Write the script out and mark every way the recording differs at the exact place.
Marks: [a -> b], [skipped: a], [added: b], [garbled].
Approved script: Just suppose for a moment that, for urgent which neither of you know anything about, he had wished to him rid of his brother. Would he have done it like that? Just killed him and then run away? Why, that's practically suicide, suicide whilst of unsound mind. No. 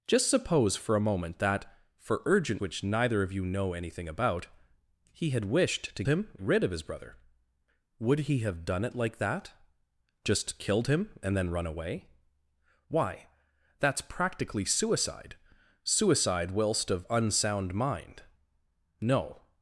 Just suppose for a moment that, for urgent which neither of you know anything about, he had wished to him rid of his brother. Would he have done it like that? Just killed him and then run away? Why, that's practically suicide, suicide whilst of unsound mind. No.